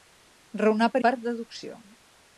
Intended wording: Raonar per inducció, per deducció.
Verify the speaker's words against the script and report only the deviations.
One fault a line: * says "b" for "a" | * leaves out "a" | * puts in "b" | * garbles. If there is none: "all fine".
* leaves out "inducció"